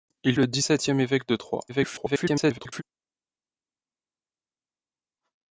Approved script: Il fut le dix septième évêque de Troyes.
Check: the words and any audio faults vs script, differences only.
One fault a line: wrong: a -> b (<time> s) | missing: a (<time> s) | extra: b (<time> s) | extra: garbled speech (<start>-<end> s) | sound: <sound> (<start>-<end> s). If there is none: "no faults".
missing: fut (0.3 s)
extra: garbled speech (1.7-2.8 s)